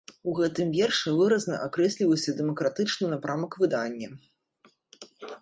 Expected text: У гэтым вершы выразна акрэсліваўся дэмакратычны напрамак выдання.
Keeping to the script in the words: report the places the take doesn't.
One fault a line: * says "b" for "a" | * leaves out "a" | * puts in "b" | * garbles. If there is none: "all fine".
all fine